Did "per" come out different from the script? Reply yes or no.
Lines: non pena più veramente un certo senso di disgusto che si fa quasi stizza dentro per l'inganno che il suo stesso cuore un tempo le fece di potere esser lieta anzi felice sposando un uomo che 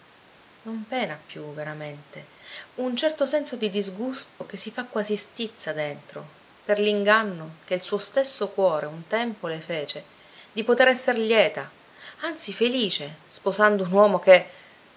no